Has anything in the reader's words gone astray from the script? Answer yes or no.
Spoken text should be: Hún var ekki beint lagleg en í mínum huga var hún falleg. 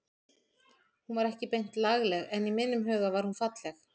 no